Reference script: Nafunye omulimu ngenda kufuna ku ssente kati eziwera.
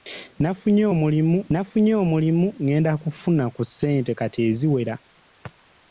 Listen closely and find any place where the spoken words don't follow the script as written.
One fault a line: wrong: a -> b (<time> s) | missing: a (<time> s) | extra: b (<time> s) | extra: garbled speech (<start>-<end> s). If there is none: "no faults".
extra: nafunye omulimu (1.5 s)